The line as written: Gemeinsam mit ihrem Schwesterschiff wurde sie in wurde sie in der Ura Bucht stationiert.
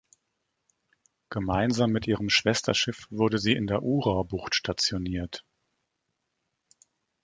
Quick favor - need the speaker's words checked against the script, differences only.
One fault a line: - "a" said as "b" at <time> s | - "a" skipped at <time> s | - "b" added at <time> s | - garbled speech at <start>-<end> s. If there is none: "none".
- "wurde sie in" skipped at 3.7 s